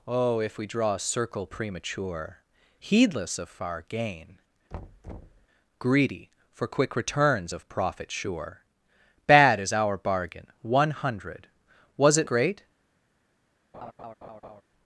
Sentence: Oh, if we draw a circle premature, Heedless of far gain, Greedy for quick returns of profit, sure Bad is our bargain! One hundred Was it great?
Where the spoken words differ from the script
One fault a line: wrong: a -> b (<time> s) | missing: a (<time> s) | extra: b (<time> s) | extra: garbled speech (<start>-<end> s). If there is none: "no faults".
no faults